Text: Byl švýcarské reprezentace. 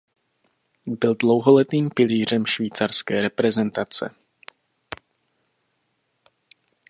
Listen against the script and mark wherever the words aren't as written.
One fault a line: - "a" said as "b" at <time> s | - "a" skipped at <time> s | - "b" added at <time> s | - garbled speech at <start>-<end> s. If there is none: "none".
- "dlouholetým pilířem" added at 1.1 s